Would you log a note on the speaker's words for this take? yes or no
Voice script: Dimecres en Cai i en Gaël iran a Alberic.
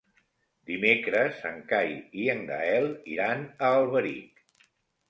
no